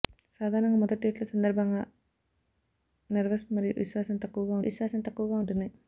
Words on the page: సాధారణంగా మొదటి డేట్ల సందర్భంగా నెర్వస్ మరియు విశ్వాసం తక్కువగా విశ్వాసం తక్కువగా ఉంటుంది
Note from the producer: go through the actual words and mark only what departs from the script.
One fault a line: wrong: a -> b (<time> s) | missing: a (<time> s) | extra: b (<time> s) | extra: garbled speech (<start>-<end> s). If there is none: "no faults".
no faults